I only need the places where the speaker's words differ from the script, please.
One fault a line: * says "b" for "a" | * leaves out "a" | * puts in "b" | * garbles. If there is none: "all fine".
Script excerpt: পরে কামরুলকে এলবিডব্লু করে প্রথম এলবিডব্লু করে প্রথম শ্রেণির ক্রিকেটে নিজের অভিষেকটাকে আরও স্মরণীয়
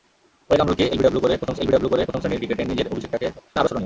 all fine